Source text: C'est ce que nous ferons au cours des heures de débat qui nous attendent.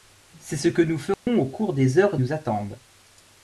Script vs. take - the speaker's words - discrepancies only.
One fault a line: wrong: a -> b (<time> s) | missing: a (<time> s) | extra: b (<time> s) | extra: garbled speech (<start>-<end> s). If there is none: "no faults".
missing: de débat qui (2.2 s)